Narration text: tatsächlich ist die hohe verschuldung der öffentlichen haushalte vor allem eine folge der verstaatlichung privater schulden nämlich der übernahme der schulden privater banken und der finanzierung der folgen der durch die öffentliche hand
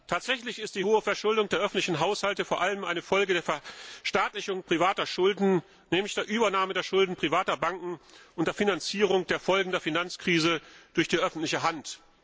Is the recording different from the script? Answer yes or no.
yes